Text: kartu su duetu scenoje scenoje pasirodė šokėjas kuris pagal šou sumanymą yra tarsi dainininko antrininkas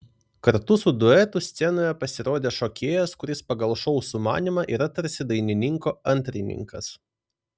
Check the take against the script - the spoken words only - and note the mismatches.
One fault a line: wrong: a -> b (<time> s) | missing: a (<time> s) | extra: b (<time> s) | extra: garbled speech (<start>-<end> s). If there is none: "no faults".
missing: scenoje (1.9 s)